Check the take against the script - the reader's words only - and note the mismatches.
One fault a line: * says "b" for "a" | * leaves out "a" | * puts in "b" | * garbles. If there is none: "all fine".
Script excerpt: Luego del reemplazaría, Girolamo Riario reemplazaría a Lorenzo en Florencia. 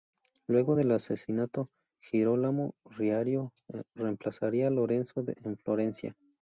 * says "asesinato" for "reemplazaría"